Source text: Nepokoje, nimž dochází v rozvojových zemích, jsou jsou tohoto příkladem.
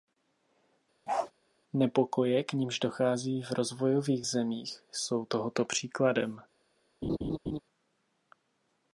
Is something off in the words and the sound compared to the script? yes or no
yes